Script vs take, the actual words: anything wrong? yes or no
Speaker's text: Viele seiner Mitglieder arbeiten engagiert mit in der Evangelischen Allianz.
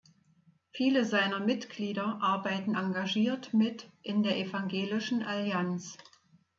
no